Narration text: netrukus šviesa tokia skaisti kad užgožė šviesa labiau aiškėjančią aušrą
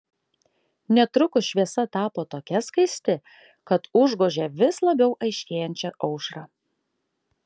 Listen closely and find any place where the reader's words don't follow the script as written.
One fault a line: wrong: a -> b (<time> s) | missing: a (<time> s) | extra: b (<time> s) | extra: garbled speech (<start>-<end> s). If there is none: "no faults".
extra: tapo (2.0 s)
wrong: šviesa -> vis (4.6 s)